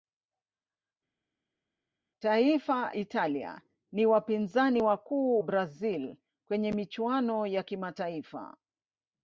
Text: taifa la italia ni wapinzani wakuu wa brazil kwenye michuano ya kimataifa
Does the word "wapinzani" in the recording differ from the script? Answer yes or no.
no